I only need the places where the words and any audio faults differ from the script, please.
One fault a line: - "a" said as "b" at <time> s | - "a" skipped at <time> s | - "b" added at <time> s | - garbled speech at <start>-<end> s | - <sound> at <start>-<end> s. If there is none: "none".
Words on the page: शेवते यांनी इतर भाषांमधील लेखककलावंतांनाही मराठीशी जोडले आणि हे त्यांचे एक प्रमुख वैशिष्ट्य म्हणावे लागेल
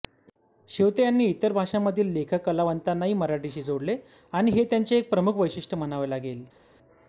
none